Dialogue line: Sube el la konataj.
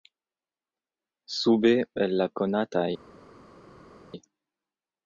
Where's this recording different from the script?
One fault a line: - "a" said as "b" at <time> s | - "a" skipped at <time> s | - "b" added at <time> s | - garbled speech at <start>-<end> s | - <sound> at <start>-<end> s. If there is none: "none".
none